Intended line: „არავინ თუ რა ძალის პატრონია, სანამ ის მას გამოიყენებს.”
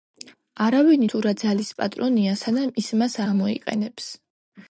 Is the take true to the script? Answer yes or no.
yes